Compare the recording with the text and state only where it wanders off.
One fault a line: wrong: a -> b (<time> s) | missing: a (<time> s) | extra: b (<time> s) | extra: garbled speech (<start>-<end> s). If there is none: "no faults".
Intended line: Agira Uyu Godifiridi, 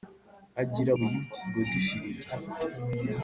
no faults